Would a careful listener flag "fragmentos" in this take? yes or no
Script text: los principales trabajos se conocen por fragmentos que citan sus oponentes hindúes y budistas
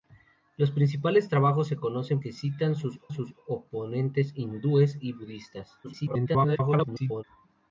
yes